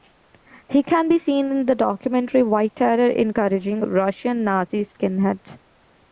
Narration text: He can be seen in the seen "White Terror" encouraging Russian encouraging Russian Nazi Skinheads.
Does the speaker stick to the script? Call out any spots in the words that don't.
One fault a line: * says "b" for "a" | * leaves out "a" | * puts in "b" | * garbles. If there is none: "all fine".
* says "documentary" for "seen"
* leaves out "encouraging Russian"